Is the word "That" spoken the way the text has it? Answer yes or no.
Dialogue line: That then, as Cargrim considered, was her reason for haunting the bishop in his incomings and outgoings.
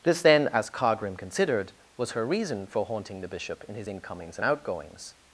no